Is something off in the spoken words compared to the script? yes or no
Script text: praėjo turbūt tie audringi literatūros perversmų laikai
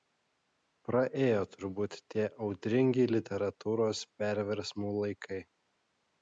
no